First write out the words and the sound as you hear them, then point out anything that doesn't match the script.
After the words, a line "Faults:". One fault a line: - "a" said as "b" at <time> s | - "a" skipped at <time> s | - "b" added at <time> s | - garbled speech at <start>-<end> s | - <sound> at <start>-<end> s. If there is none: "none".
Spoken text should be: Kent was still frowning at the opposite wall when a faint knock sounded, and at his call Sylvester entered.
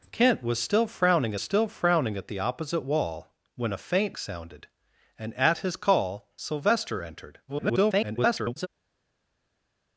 Kent was still frowning still frowning at the opposite wall when a faint sounded, and at his call Sylvester entered. [garbled]
Faults:
- "still frowning" added at 1.4 s
- "knock" skipped at 4.2 s
- garbled speech at 7.5-8.7 s